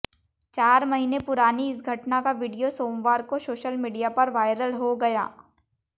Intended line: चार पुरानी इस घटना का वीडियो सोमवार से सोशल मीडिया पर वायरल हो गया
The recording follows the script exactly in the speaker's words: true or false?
false